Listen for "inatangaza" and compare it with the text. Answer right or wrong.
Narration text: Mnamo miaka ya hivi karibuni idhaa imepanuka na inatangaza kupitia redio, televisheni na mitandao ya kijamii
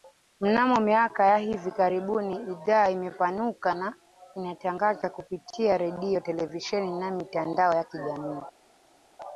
right